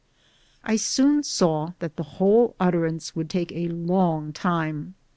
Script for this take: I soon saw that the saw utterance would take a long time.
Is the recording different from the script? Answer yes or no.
yes